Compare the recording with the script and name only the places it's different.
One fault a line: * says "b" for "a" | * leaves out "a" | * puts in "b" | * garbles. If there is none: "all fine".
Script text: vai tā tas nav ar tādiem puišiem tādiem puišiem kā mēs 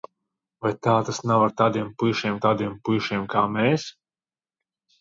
all fine